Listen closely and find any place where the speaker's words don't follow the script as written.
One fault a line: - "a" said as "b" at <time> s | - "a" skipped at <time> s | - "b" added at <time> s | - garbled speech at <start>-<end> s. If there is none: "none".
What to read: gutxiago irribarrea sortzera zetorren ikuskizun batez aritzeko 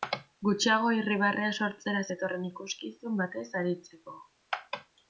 none